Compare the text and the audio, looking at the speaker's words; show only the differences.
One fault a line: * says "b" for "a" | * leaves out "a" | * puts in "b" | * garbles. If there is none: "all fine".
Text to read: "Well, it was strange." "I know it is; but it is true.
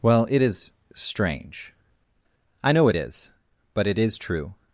* says "is" for "was"